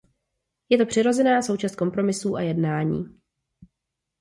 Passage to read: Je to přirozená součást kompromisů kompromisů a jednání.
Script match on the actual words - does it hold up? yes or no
no